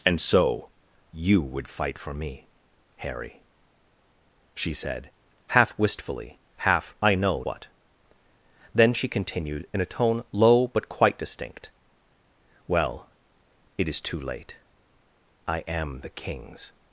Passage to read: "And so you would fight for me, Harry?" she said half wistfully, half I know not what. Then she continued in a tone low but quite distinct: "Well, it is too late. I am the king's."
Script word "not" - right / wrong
wrong